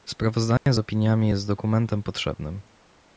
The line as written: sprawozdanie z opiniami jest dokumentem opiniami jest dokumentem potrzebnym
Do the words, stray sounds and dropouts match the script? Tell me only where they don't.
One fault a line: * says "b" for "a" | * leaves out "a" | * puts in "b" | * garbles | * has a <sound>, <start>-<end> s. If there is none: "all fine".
* has a dropout, 0.6-0.7 s
* leaves out "opiniami jest dokumentem"